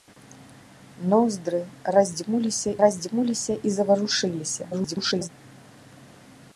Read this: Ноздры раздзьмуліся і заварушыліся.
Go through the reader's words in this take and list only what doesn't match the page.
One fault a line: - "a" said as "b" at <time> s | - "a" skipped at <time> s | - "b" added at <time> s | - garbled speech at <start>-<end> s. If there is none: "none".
- "раздзьмуліся" added at 2.8 s
- garbled speech at 4.7-5.3 s